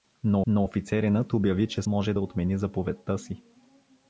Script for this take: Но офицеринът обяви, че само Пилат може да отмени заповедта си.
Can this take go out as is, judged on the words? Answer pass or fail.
fail